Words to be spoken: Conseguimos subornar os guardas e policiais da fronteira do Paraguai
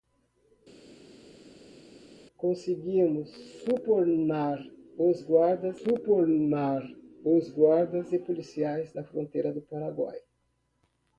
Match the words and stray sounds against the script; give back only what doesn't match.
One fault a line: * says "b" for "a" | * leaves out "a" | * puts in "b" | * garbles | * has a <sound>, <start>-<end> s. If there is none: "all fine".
* puts in "subornar os guardas"